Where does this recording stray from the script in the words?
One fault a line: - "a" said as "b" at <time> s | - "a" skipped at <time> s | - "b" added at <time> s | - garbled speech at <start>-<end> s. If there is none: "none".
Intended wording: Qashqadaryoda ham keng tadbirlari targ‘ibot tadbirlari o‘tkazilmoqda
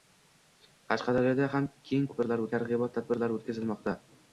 none